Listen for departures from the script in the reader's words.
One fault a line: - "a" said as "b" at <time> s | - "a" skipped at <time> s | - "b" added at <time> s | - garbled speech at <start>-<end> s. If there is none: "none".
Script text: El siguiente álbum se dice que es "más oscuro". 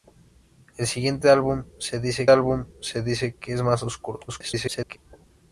- "álbum se dice" added at 2.3 s
- garbled speech at 4.3-5.0 s